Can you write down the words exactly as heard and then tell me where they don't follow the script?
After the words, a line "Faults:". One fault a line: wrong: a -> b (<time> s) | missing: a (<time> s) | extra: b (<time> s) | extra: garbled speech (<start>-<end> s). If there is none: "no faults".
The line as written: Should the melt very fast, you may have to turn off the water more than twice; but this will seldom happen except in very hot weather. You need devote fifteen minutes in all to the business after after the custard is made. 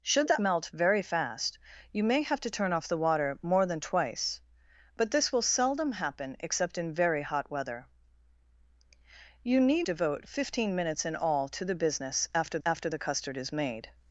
Should the melt very fast, you may have to turn off the water more than twice; but this will seldom happen except in very hot weather. You need devote fifteen minutes in all to the business after after the custard is made.
Faults:
no faults